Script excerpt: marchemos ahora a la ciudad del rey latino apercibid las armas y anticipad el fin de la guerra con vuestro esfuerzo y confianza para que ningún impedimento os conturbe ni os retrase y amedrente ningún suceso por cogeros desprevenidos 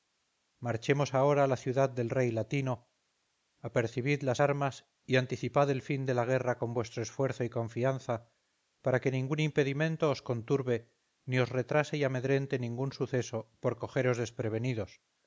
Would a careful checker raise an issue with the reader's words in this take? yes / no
no